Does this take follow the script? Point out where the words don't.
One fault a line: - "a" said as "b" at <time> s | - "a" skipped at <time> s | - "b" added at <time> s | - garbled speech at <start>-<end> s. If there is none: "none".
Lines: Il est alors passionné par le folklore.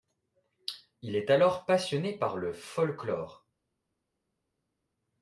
none